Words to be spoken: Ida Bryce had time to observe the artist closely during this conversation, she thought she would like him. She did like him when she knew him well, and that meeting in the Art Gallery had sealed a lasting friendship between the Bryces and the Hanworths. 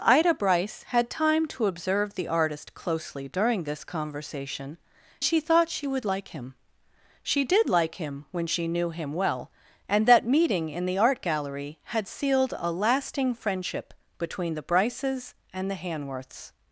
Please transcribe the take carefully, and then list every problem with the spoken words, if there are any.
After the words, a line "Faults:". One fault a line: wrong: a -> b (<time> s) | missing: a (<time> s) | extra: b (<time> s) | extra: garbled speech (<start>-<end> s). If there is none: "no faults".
Ida Bryce had time to observe the artist closely during this conversation, she thought she would like him. She did like him when she knew him well, and that meeting in the Art Gallery had sealed a lasting friendship between the Bryces and the Hanworths.
Faults:
no faults